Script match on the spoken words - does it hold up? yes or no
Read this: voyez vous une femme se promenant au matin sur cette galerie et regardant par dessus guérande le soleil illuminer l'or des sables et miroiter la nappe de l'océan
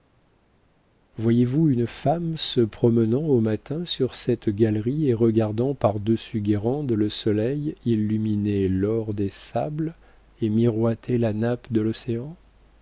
yes